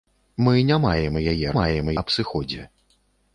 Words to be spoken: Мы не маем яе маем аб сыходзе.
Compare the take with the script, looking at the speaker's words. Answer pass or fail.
pass